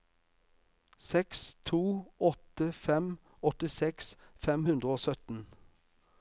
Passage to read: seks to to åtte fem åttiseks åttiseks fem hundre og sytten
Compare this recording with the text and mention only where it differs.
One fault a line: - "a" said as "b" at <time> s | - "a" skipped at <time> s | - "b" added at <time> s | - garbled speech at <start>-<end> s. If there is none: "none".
- "to" skipped at 1.8 s
- "åttiseks" skipped at 4.1 s